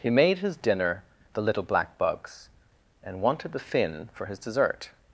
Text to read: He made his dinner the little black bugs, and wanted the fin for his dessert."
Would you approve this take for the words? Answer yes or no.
yes